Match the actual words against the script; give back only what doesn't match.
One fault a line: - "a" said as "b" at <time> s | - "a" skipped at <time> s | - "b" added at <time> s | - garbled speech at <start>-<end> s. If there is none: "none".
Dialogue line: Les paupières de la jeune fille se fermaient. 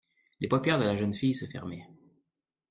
none